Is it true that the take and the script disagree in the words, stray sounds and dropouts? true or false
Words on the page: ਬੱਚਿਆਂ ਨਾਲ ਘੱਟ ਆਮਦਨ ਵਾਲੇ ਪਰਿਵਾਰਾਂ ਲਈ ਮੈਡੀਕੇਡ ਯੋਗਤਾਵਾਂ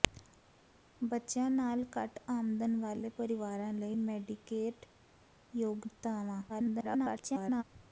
true